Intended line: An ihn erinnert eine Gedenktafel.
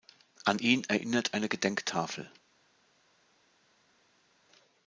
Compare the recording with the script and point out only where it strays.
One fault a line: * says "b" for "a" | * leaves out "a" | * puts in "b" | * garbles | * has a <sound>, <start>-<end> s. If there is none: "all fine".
all fine